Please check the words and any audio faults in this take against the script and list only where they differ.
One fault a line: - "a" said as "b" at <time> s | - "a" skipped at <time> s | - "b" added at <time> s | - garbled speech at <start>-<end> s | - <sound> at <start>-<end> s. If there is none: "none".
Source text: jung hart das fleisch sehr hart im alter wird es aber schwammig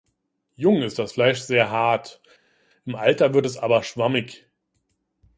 - "hart" said as "ist" at 0.8 s